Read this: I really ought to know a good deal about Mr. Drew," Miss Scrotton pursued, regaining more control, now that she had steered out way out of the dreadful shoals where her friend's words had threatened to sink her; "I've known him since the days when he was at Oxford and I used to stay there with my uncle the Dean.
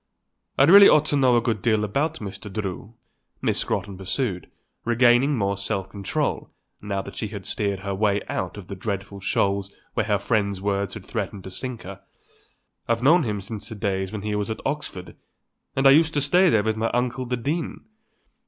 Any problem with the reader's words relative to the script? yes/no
yes